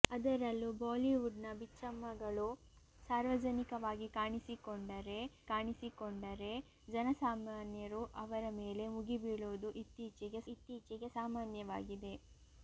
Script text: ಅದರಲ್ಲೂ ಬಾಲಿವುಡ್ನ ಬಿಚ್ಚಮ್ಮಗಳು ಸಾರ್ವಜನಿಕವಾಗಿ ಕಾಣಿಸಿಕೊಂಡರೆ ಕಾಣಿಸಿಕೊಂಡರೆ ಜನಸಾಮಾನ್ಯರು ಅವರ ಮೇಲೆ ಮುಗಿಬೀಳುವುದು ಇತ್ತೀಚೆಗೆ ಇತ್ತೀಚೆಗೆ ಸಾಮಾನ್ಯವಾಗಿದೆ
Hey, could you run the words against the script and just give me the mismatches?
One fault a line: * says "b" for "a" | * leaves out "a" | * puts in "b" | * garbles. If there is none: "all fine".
all fine